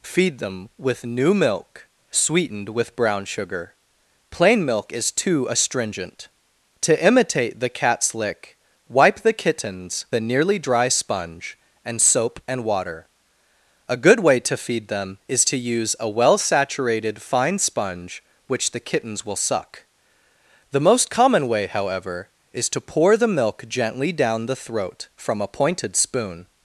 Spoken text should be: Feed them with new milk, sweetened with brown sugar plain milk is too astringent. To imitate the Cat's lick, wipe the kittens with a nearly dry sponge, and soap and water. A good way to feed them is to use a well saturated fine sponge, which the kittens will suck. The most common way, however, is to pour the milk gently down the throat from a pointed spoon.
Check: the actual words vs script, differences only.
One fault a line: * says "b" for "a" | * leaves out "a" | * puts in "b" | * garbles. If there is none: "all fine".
* leaves out "with"